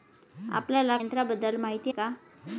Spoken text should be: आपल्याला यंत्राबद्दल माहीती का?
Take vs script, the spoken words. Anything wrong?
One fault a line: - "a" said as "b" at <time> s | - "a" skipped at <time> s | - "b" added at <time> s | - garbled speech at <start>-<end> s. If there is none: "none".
none